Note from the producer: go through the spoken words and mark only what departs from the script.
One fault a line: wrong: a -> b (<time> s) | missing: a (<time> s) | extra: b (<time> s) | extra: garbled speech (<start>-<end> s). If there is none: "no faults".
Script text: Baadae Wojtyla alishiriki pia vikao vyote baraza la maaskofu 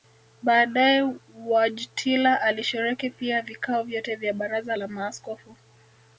extra: vya (4.2 s)